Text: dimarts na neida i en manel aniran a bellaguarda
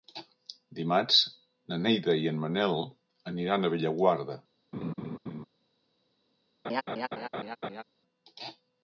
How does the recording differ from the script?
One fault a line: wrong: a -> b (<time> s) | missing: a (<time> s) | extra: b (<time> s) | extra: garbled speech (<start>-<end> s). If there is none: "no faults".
no faults